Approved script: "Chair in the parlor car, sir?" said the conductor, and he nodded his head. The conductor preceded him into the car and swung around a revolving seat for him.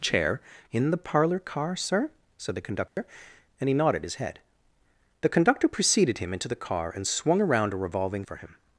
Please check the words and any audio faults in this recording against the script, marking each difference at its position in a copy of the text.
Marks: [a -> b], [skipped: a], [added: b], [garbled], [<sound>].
"Chair in the parlor car, sir?" said the conductor, [dropout] and he nodded his head. The conductor preceded him into the car and swung around a revolving [skipped: seat] for him.